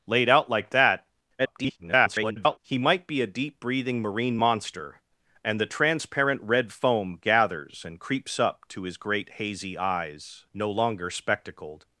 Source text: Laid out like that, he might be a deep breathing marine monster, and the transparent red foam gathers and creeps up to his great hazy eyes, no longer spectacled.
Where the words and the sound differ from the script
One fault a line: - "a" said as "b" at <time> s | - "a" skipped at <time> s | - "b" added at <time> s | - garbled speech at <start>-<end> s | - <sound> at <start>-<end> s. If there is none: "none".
- garbled speech at 1.4-2.6 s